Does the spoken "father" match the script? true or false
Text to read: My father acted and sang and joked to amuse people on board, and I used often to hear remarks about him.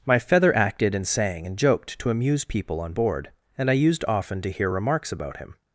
false